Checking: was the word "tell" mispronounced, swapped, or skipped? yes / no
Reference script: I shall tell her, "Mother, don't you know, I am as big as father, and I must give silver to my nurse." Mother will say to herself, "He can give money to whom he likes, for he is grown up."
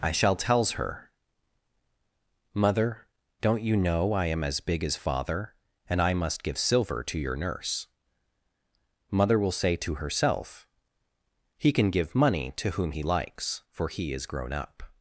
yes